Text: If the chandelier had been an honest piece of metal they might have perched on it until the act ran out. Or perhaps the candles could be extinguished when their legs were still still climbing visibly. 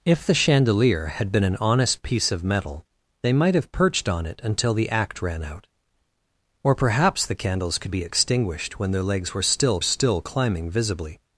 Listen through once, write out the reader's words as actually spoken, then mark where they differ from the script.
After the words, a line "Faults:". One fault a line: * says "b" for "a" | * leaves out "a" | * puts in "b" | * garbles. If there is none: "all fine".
If the chandelier had been an honest piece of metal they might have perched on it until the act ran out. Or perhaps the candles could be extinguished when their legs were still still climbing visibly.
Faults:
all fine